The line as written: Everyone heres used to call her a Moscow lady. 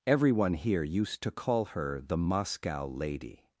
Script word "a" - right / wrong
wrong